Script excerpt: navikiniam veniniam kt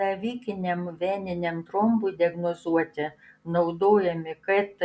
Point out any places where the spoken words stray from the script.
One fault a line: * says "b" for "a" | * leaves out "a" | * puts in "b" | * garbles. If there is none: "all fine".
* puts in "trombui diagnozuoti naudojami"